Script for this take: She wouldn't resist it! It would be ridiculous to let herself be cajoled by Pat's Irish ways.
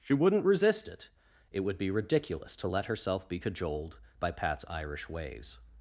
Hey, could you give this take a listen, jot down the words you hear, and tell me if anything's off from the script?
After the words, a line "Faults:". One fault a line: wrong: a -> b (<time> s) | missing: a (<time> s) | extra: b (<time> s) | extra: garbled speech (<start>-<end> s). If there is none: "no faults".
She wouldn't resist it! It would be ridiculous to let herself be cajoled by Pat's Irish ways.
Faults:
no faults